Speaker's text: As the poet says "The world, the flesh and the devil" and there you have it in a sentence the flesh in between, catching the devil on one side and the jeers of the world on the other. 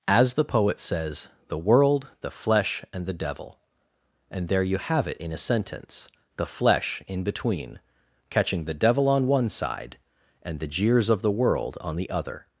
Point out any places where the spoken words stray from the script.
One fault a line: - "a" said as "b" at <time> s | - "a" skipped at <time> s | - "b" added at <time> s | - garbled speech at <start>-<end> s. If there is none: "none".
none